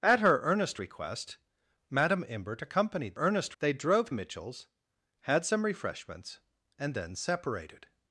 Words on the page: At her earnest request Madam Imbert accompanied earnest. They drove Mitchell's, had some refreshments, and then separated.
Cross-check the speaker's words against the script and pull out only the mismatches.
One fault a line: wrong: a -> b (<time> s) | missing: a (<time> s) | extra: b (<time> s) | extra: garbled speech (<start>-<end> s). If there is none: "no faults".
no faults